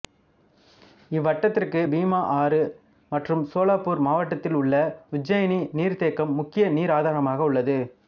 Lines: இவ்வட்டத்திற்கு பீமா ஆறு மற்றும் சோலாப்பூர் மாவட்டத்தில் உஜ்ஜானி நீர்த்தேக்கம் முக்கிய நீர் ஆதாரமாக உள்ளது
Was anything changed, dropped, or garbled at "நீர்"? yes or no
no